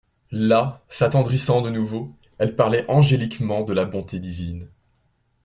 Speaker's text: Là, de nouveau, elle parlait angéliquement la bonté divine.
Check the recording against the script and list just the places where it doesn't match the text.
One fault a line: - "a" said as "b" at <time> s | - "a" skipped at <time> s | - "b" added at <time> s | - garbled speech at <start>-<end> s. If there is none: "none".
- "s'attendrissant" added at 0.9 s
- "de" added at 3.6 s